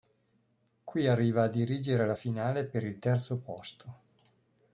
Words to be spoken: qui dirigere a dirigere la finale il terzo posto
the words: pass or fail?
fail